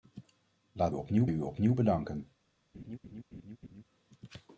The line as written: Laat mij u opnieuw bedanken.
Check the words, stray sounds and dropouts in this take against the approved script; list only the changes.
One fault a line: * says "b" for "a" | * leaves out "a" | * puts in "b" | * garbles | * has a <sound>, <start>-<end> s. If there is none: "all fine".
* says "opnieuw" for "mij"
* has a laugh, 2.7-3.8 s